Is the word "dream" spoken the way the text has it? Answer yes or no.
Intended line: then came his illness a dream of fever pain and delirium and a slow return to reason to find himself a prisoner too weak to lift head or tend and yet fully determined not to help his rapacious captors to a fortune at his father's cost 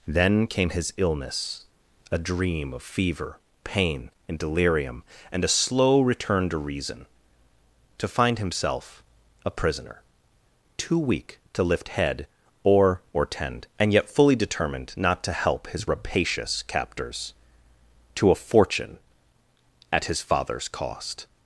yes